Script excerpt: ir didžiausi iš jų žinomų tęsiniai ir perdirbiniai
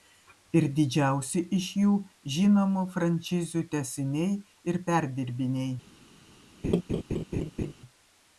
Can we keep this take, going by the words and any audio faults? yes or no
no